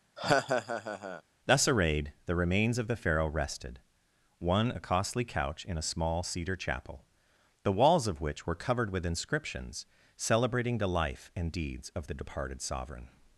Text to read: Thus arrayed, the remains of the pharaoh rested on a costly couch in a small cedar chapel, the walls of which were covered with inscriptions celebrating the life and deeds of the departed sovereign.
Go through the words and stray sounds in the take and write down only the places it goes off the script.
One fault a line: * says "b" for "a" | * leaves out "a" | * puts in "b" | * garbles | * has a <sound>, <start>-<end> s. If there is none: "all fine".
* has a laugh, 0.2-1.2 s
* says "one" for "on"